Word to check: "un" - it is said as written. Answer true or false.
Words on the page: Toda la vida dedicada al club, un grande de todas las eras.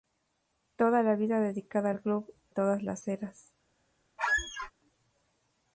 false